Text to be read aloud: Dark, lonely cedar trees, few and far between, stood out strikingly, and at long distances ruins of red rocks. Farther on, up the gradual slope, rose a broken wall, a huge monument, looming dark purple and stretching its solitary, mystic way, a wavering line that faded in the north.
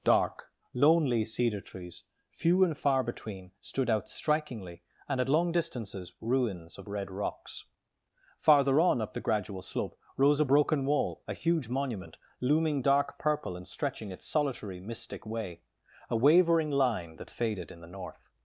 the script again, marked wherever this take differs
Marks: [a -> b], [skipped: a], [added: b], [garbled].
Dark, lonely cedar trees, few and far between, stood out strikingly, and at long distances ruins of red rocks. Farther on, up the gradual slope, rose a broken wall, a huge monument, looming dark purple and stretching its solitary, mystic way, a wavering line that faded in the north.